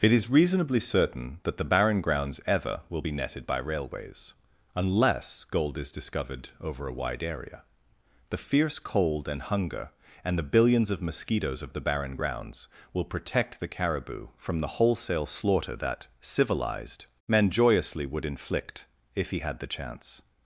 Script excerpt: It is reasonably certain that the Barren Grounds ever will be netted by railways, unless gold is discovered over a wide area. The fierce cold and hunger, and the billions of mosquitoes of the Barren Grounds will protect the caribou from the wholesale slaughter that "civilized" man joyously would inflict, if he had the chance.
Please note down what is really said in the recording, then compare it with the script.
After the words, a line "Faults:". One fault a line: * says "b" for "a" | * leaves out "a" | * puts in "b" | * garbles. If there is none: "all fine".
It is reasonably certain that the Barren Grounds ever will be netted by railways, unless gold is discovered over a wide area. The fierce cold and hunger, and the billions of mosquitoes of the Barren Grounds will protect the caribou from the wholesale slaughter that "civilized" man joyously would inflict, if he had the chance.
Faults:
all fine